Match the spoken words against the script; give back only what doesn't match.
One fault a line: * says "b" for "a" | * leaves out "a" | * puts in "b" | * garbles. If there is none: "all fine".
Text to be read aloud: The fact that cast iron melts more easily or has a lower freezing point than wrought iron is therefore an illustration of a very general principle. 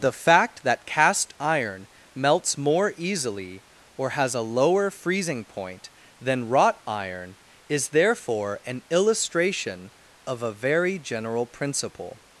all fine